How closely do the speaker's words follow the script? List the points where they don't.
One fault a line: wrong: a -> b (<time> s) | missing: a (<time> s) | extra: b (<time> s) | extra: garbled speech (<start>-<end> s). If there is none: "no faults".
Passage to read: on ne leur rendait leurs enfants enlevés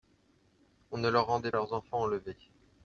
no faults